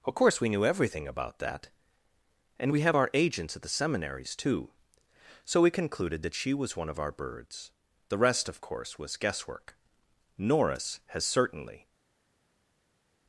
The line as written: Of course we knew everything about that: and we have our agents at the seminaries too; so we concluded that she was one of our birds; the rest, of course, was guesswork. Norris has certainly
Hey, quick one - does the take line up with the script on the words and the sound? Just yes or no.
yes